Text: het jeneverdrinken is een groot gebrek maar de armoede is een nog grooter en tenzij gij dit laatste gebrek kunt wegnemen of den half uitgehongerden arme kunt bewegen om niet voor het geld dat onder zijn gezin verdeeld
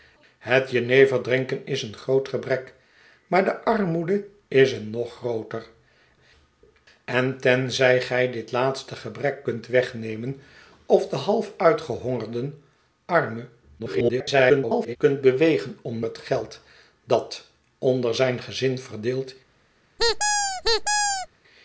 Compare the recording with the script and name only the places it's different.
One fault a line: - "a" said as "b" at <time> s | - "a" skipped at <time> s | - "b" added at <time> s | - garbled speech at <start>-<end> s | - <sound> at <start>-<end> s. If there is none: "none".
- garbled speech at 13.8-15.0 s
- "niet voor" skipped at 16.0 s
- squeak at 20.0-21.3 s